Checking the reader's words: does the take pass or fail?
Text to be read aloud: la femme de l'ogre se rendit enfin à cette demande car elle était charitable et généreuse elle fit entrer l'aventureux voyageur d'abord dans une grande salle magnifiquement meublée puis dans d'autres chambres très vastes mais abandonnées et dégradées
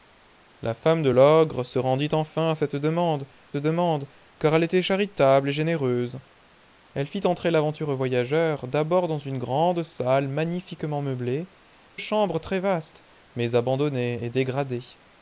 fail